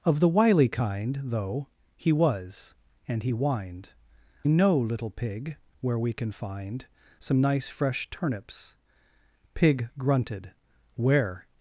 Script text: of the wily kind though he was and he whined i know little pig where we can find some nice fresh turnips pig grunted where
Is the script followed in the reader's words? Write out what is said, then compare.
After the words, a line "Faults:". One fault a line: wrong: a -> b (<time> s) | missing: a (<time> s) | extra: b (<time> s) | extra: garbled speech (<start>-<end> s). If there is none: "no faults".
of the wily kind though he was and he whined know little pig where we can find some nice fresh turnips pig grunted where
Faults:
missing: i (3.9 s)